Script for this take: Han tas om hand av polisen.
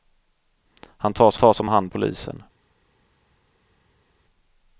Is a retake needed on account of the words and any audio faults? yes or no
yes